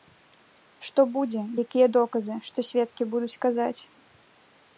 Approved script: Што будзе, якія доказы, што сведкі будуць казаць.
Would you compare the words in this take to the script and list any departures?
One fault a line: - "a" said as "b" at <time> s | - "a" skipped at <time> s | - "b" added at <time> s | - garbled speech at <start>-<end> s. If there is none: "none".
none